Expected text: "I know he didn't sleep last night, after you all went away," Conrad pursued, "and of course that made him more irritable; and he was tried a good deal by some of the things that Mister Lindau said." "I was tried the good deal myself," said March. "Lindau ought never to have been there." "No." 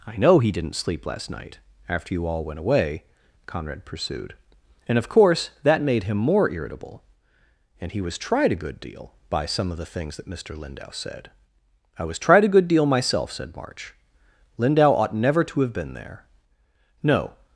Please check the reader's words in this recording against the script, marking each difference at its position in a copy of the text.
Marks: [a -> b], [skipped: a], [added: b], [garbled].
"I know he didn't sleep last night, after you all went away," Conrad pursued, "and of course that made him more irritable; and he was tried a good deal by some of the things that Mister Lindau said." "I was tried [the -> a] good deal myself," said March. "Lindau ought never to have been there." "No."